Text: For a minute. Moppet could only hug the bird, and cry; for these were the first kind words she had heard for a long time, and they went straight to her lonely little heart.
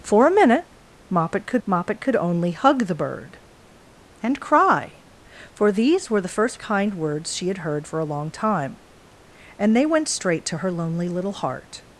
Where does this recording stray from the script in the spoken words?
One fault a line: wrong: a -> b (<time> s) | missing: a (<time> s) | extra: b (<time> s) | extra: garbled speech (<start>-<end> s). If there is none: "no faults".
extra: moppet could (1.7 s)